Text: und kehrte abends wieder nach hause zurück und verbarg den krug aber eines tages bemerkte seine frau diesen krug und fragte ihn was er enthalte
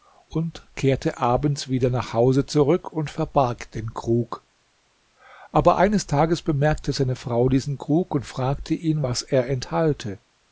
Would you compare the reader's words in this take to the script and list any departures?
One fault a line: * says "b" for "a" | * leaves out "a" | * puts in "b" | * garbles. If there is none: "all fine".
all fine